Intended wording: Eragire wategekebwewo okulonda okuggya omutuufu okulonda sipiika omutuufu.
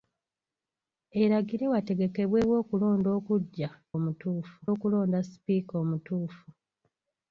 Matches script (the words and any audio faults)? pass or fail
pass